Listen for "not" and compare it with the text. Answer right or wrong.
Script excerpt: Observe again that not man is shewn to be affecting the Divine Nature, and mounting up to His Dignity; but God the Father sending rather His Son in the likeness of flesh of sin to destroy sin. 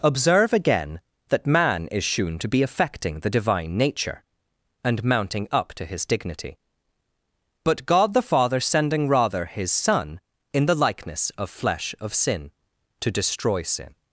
wrong